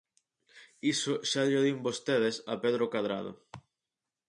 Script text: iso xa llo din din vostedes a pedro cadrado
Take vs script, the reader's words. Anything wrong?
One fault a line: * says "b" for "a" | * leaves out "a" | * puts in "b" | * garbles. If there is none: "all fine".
* leaves out "din"